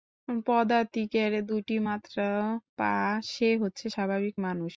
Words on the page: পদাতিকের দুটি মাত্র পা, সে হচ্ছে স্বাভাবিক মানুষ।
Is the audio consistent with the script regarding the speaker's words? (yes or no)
yes